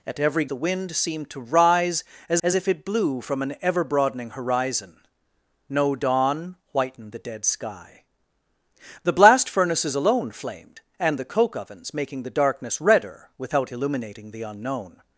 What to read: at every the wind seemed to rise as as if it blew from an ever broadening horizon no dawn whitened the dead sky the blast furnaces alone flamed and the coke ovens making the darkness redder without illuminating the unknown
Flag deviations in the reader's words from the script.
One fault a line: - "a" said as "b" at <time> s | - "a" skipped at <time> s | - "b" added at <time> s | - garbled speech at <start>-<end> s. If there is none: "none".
none